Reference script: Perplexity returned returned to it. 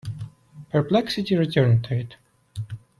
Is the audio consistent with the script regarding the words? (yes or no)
no